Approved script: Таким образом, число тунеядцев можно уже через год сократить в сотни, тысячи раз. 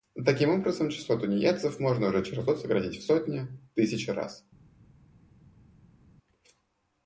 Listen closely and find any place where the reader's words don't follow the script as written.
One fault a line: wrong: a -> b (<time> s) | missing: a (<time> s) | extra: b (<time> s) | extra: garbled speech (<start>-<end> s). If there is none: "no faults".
no faults